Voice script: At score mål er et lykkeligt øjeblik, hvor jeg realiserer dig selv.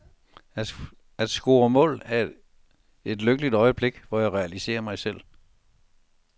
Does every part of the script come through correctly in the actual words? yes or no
no